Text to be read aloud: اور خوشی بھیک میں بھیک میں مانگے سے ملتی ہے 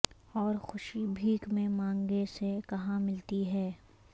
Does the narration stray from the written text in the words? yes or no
yes